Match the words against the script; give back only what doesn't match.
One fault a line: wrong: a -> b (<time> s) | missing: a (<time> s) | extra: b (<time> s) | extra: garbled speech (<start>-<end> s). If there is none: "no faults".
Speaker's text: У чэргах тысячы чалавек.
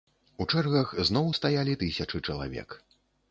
extra: зноў стаялі (1.1 s)